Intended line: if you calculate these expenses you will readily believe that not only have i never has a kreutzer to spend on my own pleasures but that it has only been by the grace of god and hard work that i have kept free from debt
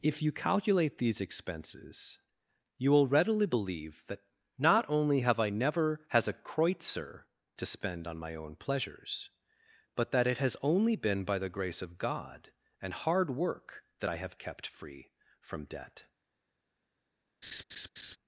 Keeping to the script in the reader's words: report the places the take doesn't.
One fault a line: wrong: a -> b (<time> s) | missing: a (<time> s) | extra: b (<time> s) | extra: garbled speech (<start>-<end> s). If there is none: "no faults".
no faults